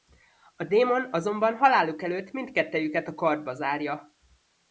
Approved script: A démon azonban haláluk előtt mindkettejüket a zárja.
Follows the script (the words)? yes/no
no